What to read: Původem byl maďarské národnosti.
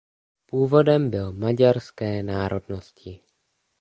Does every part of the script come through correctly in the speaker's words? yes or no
yes